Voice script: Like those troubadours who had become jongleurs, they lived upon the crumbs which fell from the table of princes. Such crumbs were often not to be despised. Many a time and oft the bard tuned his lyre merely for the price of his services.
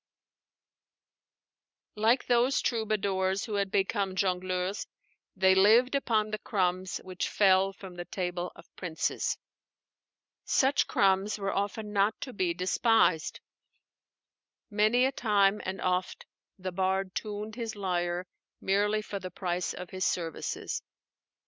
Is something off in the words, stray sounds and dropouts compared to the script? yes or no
no